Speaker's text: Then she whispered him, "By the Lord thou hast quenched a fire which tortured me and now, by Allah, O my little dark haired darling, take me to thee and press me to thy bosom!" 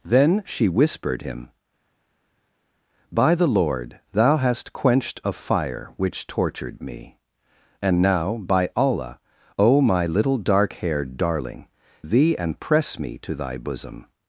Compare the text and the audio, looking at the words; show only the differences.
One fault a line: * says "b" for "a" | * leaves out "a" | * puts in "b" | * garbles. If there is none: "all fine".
* leaves out "take me to"